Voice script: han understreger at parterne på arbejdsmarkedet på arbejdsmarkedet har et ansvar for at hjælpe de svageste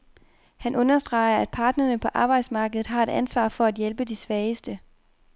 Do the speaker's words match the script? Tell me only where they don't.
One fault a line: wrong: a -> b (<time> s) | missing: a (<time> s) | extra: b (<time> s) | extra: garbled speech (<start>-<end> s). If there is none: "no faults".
missing: på arbejdsmarkedet (2.9 s)